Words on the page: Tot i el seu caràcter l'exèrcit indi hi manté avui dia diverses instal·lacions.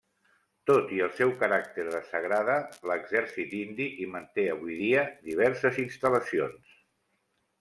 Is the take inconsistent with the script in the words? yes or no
yes